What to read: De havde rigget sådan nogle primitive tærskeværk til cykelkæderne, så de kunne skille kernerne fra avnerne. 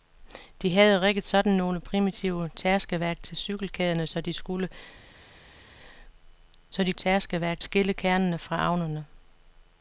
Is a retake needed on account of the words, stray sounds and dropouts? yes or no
yes